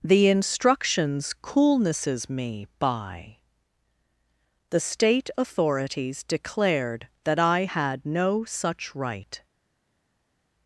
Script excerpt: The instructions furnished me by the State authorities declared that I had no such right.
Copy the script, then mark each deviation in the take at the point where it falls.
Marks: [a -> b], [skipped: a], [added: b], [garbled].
The instructions [furnished -> coolnesses] me by the State authorities declared that I had no such right.